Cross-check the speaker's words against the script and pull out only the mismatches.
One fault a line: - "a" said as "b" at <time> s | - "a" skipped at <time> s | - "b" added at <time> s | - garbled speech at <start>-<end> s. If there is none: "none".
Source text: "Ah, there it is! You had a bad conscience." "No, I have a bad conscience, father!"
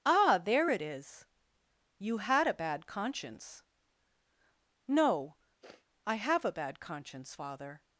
none